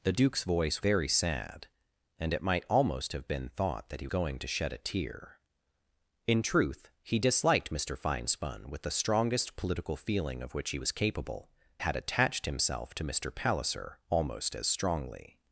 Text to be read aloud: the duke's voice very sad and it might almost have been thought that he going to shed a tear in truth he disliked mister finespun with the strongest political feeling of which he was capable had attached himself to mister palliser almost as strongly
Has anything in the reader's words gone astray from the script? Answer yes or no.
no